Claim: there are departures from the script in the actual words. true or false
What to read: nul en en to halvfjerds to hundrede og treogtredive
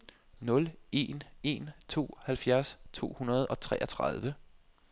false